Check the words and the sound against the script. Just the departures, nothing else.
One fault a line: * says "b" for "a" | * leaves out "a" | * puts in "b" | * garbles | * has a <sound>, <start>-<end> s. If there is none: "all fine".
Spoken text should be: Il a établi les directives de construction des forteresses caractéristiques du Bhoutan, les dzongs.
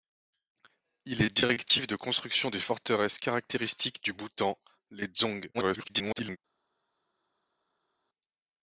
* leaves out "a établi"
* garbles